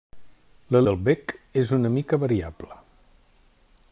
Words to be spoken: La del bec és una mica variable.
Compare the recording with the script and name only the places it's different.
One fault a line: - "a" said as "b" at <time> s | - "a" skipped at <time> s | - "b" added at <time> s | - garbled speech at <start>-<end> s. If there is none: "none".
none